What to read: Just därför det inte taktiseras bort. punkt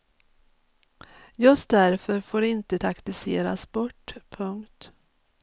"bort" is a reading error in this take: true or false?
false